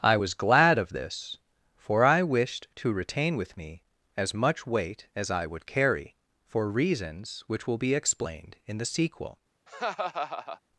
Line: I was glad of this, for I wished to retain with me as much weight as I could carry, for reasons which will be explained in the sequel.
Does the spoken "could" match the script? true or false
false